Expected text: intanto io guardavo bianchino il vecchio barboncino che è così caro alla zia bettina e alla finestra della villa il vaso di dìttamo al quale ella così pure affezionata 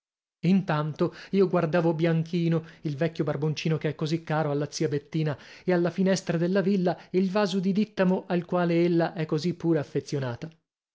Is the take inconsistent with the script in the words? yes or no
yes